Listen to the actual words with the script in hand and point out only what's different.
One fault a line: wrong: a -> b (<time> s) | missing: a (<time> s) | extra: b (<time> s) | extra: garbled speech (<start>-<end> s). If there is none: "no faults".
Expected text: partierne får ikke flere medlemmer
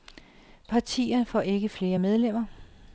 no faults